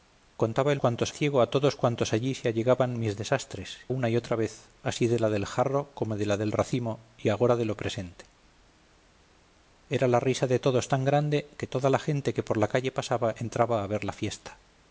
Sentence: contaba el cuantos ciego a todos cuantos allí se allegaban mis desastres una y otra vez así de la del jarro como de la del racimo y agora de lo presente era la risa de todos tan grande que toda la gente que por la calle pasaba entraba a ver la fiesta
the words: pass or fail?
pass